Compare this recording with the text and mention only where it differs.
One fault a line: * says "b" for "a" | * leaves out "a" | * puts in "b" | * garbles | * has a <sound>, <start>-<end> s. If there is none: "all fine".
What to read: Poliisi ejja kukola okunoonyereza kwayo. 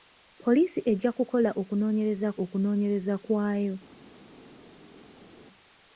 * puts in "okunoonyereza"